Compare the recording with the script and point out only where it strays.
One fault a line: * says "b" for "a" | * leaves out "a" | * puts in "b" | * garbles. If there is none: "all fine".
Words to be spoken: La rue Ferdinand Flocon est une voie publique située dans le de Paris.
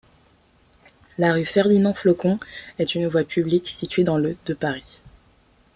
all fine